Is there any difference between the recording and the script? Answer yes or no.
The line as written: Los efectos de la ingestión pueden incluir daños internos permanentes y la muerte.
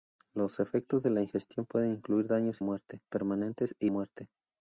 yes